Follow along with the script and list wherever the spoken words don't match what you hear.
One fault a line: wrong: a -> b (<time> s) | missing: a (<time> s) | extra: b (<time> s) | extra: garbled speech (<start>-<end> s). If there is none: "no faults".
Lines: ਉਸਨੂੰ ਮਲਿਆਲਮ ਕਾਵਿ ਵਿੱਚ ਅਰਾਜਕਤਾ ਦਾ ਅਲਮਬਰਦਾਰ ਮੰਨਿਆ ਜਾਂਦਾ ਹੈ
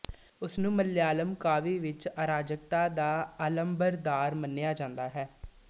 no faults